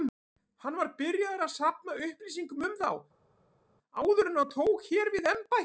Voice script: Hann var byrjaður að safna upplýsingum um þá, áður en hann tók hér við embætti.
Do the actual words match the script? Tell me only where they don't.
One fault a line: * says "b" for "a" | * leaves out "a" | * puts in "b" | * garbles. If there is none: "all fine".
all fine